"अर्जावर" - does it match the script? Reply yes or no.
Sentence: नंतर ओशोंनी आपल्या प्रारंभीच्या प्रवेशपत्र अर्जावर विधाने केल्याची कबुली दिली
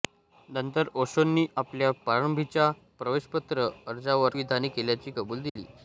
yes